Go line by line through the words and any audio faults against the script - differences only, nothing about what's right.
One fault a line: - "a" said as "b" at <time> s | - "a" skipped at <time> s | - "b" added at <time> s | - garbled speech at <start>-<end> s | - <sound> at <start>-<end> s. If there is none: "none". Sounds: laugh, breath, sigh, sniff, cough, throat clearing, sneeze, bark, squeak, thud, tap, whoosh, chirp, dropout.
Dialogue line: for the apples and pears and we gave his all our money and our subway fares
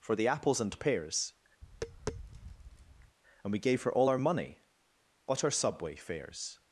- tap at 1.6-3.2 s
- "his" said as "her" at 3.8 s
- "and" said as "but" at 5.2 s